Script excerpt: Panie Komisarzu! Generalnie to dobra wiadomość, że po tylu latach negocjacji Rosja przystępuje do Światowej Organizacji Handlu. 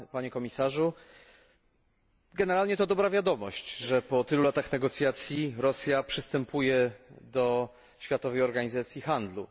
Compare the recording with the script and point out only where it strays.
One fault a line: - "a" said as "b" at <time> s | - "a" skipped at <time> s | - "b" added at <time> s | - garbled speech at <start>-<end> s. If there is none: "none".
none